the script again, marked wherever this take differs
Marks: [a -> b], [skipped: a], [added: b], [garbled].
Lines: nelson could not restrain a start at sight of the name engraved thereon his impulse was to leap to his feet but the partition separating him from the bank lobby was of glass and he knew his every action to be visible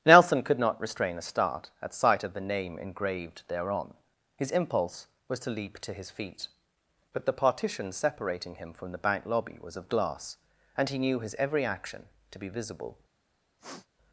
nelson could not restrain a start at sight of the name engraved thereon his impulse was to leap to his feet but the partition separating him from the bank lobby was of glass and he knew his every action to be visible